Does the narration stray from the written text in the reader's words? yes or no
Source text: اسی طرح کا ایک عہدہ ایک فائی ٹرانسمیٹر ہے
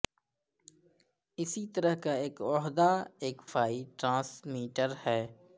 no